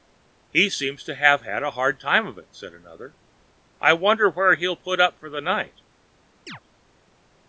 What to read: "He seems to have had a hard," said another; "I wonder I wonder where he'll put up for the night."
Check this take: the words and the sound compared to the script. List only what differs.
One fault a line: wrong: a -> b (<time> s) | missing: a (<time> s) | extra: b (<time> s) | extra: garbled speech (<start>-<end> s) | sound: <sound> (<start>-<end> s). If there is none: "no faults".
extra: time of it (2.0 s)
missing: I wonder (4.3 s)
sound: chirp (6.5-6.6 s)